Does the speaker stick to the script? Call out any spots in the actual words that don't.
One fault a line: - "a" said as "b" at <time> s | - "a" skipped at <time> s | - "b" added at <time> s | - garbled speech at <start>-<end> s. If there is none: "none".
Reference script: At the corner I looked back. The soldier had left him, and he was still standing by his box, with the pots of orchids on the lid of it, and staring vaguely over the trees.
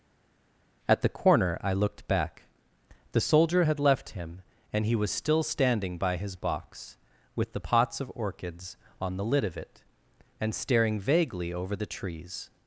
none